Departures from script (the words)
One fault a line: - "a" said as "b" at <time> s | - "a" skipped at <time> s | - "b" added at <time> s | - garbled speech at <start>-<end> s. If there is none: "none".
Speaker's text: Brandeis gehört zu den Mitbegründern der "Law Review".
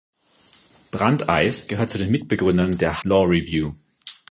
none